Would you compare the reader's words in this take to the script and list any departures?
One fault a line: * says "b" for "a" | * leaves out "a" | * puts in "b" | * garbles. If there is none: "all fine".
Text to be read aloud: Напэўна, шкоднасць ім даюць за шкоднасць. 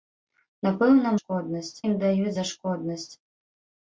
all fine